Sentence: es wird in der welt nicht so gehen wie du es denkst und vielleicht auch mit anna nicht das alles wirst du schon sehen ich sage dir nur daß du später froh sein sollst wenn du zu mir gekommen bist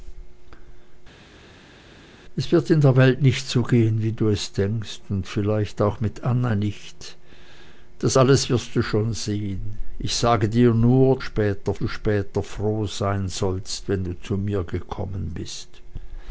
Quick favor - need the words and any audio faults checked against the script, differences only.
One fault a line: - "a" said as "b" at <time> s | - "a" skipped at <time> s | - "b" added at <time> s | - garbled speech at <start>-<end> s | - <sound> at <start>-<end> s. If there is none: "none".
- "daß" said as "später" at 11.2 s